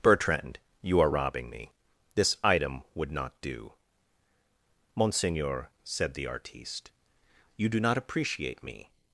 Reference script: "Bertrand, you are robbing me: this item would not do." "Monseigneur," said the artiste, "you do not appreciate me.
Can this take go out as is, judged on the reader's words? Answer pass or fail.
pass